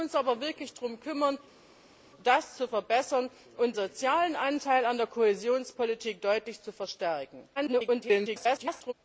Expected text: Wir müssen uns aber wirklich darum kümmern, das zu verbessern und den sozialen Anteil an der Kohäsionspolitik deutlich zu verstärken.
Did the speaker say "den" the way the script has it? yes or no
no